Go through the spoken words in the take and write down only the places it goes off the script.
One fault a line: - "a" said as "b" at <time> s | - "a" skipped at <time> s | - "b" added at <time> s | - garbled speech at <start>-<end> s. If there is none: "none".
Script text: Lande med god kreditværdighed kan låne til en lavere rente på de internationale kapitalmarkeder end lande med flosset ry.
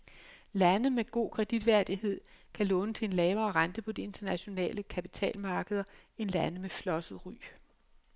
none